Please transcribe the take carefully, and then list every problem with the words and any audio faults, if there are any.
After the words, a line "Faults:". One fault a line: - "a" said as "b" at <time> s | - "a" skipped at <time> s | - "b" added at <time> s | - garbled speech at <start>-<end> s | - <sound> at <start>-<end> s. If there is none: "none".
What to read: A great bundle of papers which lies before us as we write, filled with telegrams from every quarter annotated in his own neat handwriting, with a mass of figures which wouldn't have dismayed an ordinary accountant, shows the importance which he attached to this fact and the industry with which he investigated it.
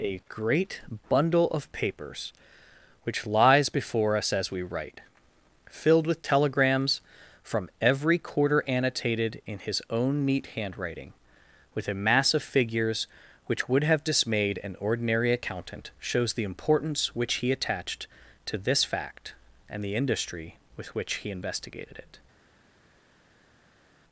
A great bundle of papers which lies before us as we write, filled with telegrams from every quarter annotated in his own neat handwriting, with a mass of figures which would have dismayed an ordinary accountant, shows the importance which he attached to this fact and the industry with which he investigated it.
Faults:
- "wouldn't" said as "would" at 13.7 s